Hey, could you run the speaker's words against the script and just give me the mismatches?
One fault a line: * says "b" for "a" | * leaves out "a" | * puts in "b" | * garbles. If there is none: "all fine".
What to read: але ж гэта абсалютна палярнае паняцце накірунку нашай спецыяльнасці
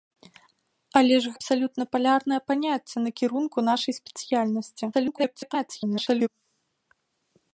* leaves out "гэта"
* garbles